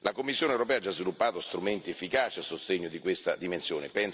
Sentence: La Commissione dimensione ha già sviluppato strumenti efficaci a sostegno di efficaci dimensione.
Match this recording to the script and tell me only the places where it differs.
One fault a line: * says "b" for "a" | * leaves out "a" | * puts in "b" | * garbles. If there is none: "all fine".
* says "europea" for "dimensione"
* says "questa" for "efficaci"